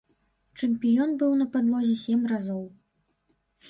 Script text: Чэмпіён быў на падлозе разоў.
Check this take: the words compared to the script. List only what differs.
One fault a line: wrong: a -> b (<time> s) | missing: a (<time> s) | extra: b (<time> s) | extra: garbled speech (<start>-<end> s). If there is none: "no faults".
extra: сем (2.1 s)